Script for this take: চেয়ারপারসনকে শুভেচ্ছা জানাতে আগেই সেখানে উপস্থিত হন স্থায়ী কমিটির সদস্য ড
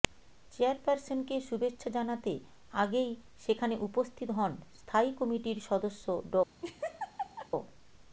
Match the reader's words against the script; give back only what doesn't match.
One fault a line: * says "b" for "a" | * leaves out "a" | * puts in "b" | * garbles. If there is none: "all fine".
all fine